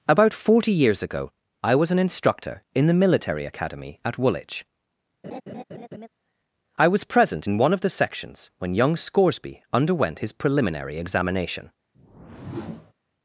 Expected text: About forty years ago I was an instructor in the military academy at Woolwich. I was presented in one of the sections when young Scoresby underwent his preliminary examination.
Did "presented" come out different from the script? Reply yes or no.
yes